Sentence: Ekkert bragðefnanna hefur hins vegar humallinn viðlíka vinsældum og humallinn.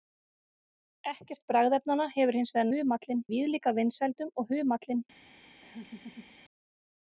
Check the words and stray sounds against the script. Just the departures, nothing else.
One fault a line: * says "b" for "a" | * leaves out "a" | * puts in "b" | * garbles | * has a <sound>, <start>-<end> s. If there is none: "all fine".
* has a laugh, 5.6-6.3 s